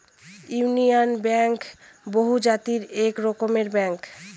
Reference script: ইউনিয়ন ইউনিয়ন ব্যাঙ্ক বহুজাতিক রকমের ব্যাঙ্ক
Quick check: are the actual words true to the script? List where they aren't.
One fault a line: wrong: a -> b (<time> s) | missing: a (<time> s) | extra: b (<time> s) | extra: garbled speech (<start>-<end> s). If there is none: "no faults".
missing: ইউনিয়ন (1.1 s)
extra: এক (3.0 s)